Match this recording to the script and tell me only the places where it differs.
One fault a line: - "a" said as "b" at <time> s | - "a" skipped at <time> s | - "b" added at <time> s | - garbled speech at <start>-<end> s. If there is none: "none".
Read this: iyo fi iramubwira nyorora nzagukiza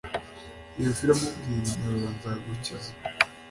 none